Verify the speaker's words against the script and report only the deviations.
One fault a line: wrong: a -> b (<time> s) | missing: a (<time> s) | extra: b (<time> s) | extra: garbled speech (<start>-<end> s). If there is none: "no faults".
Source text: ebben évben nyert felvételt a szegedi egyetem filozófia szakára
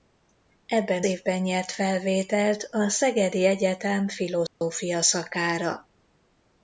no faults